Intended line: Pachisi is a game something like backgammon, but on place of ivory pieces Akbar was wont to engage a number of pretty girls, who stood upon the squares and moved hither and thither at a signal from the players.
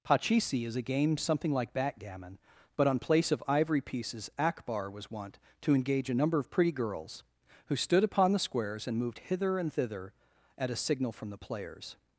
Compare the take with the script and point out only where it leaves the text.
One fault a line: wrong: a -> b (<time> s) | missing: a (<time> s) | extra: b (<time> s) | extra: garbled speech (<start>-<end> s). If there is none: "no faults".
no faults